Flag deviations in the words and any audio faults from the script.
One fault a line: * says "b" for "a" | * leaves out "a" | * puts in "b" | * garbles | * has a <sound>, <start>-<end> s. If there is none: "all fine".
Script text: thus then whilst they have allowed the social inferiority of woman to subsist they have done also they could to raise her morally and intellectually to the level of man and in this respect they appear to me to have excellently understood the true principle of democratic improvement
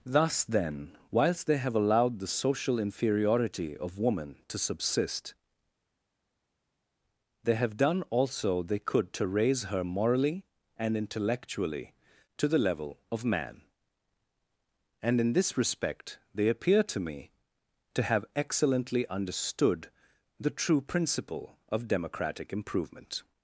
all fine